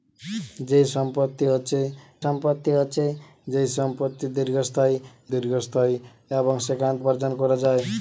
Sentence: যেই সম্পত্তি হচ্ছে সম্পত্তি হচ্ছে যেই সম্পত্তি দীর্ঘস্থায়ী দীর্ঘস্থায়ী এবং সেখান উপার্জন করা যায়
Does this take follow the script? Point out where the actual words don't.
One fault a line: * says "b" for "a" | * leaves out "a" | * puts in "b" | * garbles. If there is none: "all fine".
all fine